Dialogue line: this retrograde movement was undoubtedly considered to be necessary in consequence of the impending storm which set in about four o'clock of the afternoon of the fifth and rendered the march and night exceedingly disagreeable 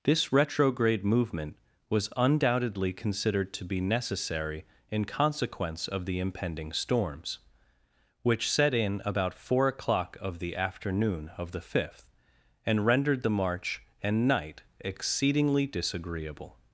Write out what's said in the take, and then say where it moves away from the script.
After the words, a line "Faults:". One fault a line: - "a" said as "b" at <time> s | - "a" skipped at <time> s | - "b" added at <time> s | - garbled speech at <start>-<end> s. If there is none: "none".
this retrograde movement was undoubtedly considered to be necessary in consequence of the impending storms which set in about four o'clock of the afternoon of the fifth and rendered the march and night exceedingly disagreeable
Faults:
- "storm" said as "storms" at 6.7 s